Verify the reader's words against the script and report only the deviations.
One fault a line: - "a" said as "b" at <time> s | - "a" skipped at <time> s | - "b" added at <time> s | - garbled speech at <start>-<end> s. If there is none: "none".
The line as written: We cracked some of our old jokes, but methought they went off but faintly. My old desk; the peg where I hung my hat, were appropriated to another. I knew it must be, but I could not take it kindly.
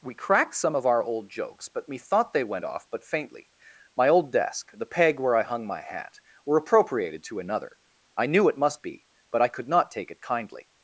none